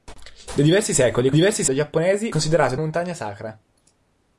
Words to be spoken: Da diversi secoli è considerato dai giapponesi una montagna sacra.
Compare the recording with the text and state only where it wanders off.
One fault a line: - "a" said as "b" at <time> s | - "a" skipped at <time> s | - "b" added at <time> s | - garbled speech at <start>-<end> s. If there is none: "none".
- "considerato" said as "diversi" at 1.3 s
- "una" said as "considerato" at 2.3 s